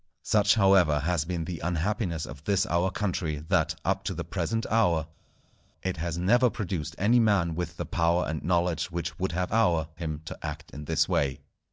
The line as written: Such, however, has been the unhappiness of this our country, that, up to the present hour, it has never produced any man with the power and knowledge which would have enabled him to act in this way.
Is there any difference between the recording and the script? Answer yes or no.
yes